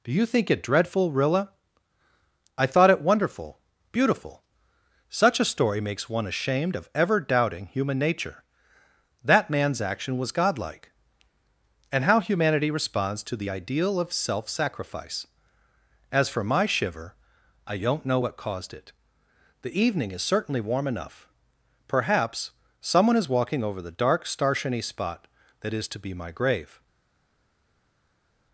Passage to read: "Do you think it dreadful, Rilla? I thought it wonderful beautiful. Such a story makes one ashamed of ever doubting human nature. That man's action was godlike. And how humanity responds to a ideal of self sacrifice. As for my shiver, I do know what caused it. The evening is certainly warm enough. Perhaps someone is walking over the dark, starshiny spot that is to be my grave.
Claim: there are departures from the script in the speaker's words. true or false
true